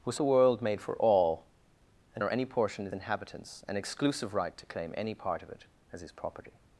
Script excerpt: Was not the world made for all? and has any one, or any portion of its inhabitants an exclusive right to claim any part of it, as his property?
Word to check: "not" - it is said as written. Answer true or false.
false